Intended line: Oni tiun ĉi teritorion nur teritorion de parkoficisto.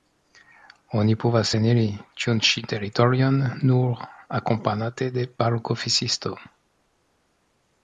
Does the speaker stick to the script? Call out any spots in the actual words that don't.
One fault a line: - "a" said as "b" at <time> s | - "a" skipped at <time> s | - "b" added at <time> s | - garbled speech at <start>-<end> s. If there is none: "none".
- "povas eniri" added at 1.2 s
- "teritorion" said as "akompanate" at 4.4 s